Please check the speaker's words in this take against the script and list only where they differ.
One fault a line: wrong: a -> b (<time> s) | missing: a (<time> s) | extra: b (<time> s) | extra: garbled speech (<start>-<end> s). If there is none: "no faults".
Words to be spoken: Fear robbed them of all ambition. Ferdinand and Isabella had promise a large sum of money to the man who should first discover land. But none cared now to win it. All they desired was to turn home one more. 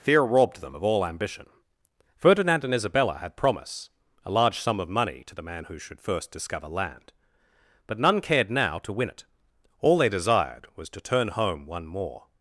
no faults